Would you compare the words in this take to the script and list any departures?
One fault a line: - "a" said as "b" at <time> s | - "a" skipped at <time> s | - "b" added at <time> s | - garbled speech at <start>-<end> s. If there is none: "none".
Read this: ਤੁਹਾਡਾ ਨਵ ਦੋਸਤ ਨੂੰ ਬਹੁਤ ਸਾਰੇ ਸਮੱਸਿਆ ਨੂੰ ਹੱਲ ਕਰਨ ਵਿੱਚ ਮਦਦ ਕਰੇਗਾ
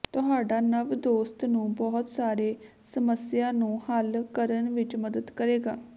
none